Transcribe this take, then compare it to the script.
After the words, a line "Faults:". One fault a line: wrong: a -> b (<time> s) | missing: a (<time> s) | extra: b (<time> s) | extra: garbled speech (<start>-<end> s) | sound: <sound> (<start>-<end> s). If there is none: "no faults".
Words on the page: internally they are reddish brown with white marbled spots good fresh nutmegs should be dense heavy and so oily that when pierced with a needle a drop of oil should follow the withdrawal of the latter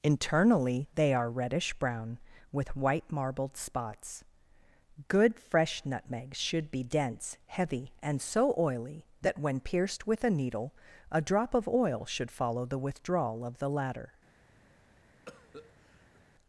internally they are reddish brown with white marbled spots good fresh nutmegs should be dense heavy and so oily that when pierced with a needle a drop of oil should follow the withdrawal of the latter
Faults:
sound: cough (15.3-16.2 s)